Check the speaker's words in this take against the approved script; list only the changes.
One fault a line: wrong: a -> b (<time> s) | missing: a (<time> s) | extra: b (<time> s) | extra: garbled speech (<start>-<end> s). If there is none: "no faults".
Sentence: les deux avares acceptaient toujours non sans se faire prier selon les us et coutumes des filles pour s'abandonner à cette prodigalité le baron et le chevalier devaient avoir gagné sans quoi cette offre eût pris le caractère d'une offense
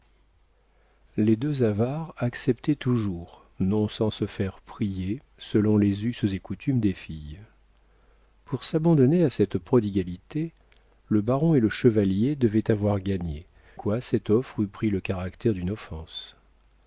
missing: sans (13.5 s)